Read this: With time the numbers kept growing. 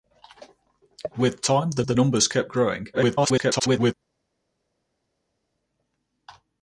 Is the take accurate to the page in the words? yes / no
no